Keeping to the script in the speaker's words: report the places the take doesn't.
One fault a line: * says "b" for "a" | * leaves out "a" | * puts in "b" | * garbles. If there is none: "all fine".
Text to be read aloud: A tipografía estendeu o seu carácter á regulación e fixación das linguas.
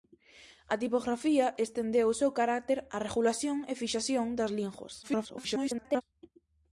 * garbles